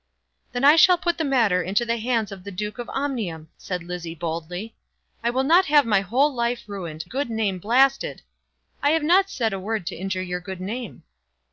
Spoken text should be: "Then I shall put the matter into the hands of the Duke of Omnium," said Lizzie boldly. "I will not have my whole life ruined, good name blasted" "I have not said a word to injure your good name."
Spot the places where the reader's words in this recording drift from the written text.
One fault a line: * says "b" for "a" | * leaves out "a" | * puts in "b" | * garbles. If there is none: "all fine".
all fine